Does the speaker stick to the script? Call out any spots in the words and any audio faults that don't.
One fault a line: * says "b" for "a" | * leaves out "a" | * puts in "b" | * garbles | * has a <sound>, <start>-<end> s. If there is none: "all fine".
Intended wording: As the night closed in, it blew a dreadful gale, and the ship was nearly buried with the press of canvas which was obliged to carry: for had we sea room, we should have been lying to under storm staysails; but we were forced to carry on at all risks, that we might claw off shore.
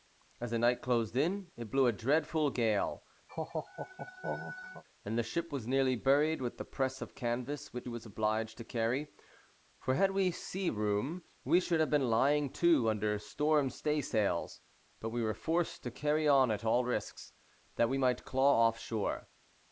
* has a laugh, 3.3-4.8 s